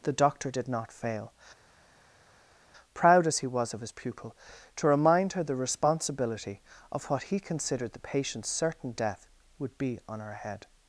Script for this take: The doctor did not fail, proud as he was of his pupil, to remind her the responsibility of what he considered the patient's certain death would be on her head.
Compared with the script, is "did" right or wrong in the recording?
right